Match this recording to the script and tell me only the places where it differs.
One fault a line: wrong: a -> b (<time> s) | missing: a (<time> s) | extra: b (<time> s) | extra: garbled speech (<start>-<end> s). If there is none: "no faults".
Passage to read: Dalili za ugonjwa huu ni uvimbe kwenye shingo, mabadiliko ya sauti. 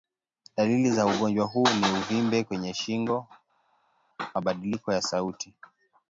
no faults